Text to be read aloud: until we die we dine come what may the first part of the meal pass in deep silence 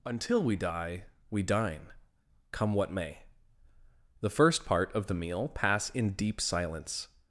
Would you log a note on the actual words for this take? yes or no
no